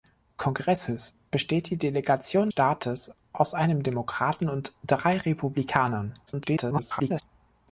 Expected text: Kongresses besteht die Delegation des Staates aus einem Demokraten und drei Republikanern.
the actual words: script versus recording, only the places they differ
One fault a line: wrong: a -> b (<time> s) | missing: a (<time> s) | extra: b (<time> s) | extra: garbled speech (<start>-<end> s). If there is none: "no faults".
missing: des (2.5 s)
extra: garbled speech (6.3-7.2 s)